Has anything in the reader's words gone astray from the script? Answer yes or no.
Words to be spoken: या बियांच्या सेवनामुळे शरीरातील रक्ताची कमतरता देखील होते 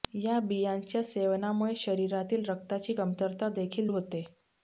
no